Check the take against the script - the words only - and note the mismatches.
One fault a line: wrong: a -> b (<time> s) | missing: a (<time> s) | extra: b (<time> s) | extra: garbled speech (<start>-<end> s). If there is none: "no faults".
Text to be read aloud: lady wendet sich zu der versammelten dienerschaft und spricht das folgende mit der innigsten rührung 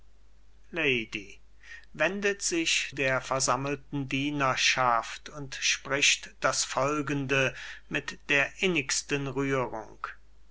missing: zu (2.9 s)